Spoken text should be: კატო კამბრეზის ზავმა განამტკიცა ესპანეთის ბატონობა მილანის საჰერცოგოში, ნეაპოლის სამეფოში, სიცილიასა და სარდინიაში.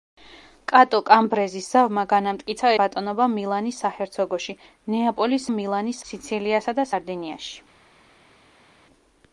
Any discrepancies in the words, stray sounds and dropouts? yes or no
yes